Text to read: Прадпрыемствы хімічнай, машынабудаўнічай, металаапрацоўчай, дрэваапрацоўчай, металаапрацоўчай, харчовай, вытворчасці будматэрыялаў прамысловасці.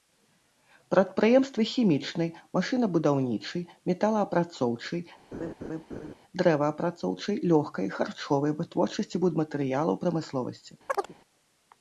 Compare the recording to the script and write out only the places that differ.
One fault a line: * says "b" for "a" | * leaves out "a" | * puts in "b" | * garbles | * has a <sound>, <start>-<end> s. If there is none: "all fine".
* has a laugh, 5.3-6.2 s
* says "лёгкай" for "металаапрацоўчай"
* has a chirp, 10.9-11.1 s